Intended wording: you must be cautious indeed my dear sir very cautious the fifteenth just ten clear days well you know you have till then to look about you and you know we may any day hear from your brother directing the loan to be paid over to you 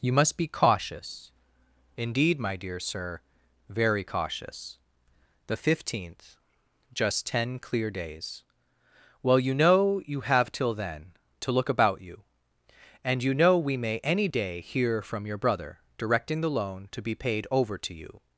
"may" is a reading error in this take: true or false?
false